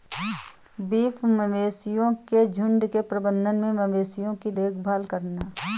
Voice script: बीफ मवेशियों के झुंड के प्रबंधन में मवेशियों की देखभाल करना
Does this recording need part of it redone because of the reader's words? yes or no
no